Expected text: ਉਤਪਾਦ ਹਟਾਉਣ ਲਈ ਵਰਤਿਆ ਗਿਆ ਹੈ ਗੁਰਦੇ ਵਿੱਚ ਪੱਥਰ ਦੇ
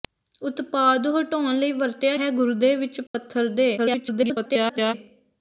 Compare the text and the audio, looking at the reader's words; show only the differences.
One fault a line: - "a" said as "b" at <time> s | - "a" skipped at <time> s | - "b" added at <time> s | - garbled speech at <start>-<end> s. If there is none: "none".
- "ਗਿਆ" skipped at 2.2 s
- garbled speech at 3.8-4.9 s